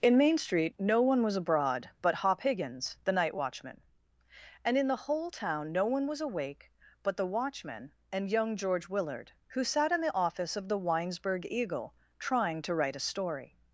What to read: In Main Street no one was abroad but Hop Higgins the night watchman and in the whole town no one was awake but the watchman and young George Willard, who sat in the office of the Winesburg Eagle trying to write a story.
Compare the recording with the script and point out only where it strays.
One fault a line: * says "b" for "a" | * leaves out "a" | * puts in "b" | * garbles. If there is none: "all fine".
all fine